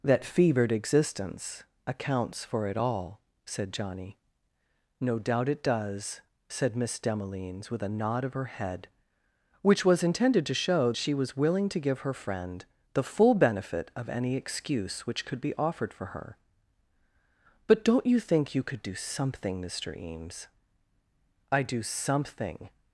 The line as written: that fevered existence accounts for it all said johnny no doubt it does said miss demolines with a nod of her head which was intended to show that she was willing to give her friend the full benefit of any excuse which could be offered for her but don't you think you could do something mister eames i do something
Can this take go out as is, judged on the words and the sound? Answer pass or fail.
fail